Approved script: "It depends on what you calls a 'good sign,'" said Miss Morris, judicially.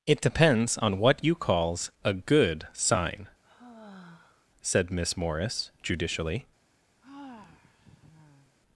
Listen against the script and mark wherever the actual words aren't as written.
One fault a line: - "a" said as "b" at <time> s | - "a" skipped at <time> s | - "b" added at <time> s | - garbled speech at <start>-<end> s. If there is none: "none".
none